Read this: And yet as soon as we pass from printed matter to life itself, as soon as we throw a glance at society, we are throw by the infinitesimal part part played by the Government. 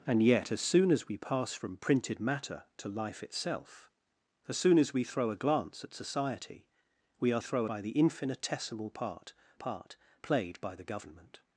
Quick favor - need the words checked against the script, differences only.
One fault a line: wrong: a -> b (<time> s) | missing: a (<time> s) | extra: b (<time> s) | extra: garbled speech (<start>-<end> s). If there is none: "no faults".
no faults